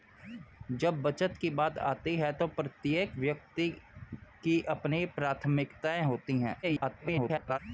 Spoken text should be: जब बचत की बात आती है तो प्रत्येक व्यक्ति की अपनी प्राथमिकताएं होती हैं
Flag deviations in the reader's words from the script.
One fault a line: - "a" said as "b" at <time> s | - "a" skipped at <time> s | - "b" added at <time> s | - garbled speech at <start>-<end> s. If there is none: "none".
- garbled speech at 6.6-7.6 s